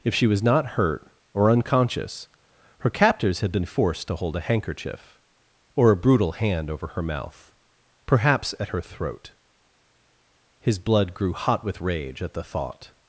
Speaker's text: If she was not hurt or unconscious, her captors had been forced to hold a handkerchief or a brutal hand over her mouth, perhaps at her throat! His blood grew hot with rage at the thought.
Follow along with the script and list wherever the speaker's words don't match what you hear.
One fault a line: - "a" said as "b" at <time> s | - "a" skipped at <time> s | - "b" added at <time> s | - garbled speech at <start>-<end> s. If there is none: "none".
none